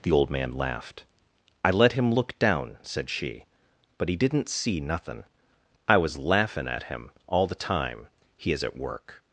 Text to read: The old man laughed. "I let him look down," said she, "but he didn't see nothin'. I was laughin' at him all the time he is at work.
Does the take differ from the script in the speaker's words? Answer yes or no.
no